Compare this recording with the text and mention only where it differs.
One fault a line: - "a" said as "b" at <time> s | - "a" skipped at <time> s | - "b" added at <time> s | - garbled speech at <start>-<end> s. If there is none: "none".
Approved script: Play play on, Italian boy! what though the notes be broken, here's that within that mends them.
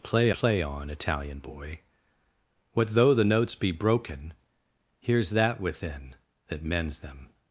none